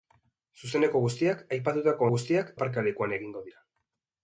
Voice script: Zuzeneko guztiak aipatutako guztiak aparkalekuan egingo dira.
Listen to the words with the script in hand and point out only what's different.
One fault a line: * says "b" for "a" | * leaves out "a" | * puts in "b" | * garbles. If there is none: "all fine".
all fine